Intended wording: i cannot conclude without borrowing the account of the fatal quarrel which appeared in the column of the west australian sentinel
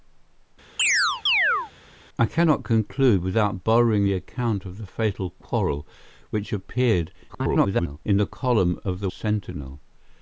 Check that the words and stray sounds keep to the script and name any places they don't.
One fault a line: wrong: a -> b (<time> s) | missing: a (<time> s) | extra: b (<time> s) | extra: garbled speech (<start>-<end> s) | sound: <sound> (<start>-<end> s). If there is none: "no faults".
sound: chirp (0.8-1.7 s)
extra: garbled speech (7.3-8.0 s)
missing: west australian (9.1 s)